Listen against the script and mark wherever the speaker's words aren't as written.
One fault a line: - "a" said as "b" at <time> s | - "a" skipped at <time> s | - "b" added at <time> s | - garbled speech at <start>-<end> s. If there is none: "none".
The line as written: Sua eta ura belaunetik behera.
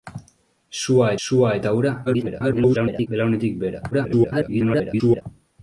- "sua" added at 1.3 s
- garbled speech at 2.1-3.1 s
- garbled speech at 3.9-5.2 s